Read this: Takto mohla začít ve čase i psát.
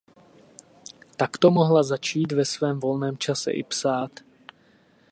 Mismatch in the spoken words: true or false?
true